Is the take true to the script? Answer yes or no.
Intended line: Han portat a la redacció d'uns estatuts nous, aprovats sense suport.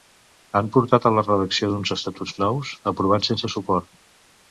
yes